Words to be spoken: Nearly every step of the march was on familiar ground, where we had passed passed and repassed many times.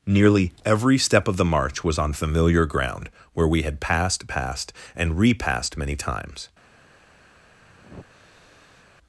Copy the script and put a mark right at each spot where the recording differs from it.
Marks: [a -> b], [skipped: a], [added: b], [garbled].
Nearly every step of the march was on familiar ground, where we had passed passed and repassed many times.